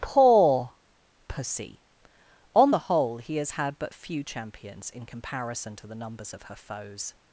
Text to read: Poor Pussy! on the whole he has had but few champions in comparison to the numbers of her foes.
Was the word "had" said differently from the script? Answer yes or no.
no